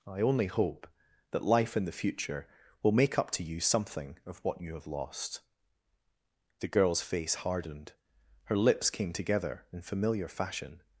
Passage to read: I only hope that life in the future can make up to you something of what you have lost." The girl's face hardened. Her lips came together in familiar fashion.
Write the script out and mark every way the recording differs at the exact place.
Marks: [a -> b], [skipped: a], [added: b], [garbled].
I only hope that life in the future [can -> will] make up to you something of what you have lost." The girl's face hardened. Her lips came together in familiar fashion.